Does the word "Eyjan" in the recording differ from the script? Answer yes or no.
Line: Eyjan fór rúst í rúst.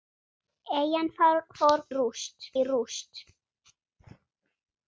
no